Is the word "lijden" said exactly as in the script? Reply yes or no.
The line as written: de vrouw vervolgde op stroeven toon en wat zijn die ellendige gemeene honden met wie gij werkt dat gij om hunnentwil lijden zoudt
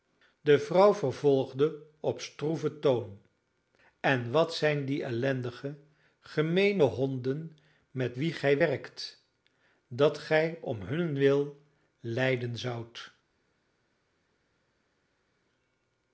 yes